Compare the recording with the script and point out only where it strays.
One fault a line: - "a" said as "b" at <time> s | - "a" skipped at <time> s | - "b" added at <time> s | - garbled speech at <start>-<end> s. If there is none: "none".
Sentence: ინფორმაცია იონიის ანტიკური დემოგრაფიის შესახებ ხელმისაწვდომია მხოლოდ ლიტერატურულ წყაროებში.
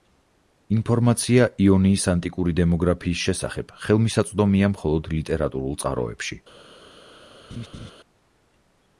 none